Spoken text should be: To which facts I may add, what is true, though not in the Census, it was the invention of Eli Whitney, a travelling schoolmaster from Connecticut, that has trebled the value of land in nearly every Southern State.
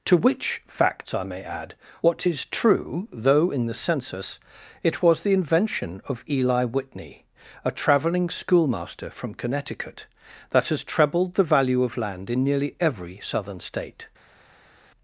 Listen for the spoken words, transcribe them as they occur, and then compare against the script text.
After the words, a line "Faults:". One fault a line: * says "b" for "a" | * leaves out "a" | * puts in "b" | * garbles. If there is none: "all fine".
To which facts I may add, what is true, though in the Census, it was the invention of Eli Whitney, a travelling schoolmaster from Connecticut, that has trebled the value of land in nearly every Southern State.
Faults:
* leaves out "not"